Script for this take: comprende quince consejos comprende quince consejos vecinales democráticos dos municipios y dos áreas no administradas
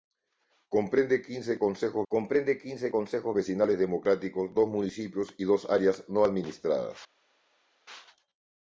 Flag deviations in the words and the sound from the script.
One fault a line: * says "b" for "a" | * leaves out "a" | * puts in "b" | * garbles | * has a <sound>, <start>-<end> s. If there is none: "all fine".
all fine